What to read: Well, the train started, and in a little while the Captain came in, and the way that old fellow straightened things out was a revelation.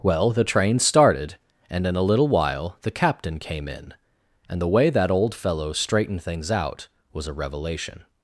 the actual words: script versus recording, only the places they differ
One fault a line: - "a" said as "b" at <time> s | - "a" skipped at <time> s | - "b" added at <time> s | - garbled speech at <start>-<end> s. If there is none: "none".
none